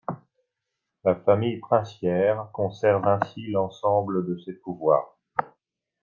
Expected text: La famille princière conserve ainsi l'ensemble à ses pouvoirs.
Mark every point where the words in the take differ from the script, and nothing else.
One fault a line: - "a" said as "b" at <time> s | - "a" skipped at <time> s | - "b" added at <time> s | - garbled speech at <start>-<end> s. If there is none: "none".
- "à" said as "de" at 4.3 s